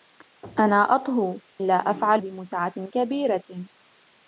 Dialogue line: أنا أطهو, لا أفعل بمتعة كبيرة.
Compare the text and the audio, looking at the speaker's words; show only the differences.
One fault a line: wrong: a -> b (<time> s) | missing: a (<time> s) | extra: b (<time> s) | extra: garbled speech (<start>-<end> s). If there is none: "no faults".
no faults